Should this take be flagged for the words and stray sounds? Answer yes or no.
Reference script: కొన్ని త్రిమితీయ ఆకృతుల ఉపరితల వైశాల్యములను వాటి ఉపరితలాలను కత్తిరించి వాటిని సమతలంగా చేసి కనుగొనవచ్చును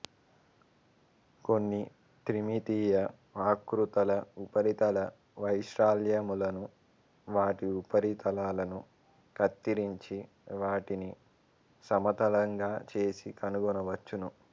no